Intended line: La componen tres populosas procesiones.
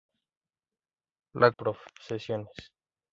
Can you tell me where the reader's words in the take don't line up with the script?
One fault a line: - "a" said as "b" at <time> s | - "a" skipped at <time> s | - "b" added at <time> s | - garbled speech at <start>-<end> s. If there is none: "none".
- "componen tres populosas" skipped at 1.5 s